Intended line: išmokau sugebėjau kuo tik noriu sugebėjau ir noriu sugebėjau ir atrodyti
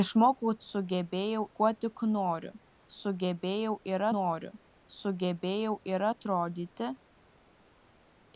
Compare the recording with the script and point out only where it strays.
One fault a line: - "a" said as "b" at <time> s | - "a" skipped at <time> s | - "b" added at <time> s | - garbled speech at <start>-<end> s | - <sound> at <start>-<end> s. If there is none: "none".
none